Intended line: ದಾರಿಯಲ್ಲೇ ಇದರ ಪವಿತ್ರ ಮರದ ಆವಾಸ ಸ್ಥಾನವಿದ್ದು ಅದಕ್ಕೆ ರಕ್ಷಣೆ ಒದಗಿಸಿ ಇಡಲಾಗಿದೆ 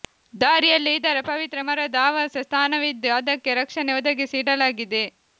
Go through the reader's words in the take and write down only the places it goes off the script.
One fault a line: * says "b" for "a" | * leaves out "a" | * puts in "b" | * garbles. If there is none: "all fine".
all fine